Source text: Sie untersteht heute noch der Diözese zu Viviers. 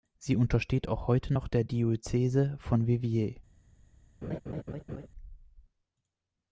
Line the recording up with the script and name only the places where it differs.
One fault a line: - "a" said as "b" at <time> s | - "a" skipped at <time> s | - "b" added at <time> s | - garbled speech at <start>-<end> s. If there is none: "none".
- "auch" added at 0.9 s
- "zu" said as "von" at 2.6 s